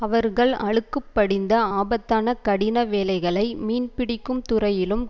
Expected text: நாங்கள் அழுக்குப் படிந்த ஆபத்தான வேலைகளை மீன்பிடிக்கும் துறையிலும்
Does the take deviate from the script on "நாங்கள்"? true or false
true